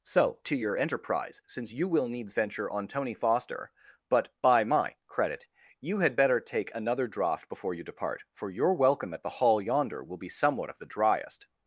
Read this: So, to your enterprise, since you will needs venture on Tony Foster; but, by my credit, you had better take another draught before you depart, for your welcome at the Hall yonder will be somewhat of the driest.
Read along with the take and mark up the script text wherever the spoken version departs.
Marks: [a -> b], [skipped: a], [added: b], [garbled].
So, to your enterprise, since you will needs venture on Tony Foster; but, by my credit, you had better take another draught before you depart, for your welcome at the Hall yonder will be somewhat of the driest.